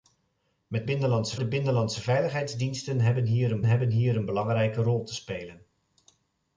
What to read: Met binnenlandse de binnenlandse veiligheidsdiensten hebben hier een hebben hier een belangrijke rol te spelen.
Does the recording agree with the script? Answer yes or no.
yes